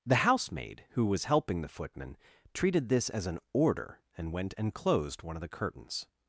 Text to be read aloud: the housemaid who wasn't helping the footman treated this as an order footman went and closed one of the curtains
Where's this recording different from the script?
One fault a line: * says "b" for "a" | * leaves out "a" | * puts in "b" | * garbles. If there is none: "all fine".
* says "was" for "wasn't"
* says "and" for "footman"